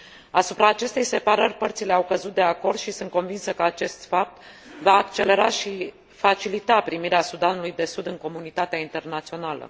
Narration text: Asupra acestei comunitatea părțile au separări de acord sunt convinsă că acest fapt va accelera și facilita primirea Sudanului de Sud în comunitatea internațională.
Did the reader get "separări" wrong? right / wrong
wrong